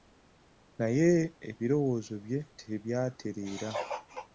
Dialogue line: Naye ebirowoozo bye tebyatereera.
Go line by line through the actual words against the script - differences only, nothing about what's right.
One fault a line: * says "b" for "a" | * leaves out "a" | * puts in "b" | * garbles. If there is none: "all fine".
all fine